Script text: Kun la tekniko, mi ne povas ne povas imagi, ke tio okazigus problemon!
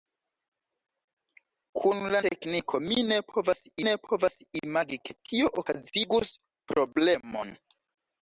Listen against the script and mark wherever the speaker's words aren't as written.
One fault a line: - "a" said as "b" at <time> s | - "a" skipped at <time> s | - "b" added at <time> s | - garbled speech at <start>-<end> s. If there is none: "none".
none